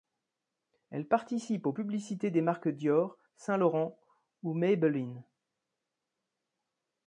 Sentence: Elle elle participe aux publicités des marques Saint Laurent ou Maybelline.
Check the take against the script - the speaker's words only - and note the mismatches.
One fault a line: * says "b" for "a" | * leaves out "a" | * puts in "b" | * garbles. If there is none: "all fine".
* leaves out "elle"
* puts in "Dior"